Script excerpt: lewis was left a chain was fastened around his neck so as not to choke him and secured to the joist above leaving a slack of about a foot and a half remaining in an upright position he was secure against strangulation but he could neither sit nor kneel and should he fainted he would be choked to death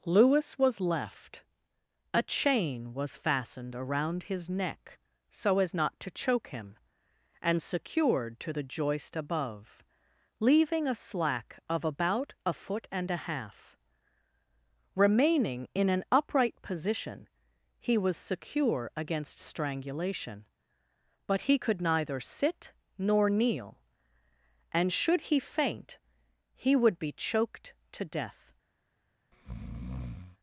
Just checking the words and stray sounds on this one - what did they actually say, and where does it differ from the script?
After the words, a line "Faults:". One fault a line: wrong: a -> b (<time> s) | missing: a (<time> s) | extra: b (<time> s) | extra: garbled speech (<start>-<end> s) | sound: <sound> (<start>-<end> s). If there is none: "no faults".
lewis was left a chain was fastened around his neck so as not to choke him and secured to the joist above leaving a slack of about a foot and a half remaining in an upright position he was secure against strangulation but he could neither sit nor kneel and should he faint he would be choked to death
Faults:
wrong: fainted -> faint (25.4 s)
sound: breath (29.3-30.4 s)